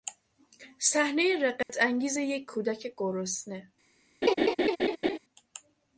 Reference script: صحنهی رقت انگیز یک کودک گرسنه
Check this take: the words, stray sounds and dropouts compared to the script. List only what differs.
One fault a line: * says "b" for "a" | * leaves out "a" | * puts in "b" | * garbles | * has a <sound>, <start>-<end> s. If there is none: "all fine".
* has a dropout, 1.6-1.7 s
* has a laugh, 4.2-5.2 s